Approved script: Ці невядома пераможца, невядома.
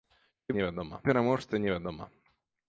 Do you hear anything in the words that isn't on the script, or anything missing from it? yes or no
no